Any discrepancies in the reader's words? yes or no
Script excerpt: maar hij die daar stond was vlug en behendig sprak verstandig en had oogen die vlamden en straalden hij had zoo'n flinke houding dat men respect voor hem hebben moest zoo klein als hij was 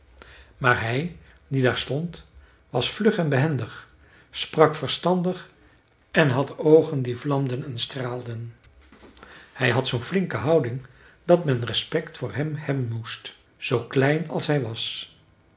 no